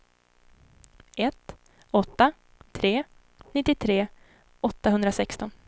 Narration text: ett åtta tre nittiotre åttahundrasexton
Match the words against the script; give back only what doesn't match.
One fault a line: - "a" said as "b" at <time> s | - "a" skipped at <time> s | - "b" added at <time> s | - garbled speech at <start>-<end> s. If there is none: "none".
none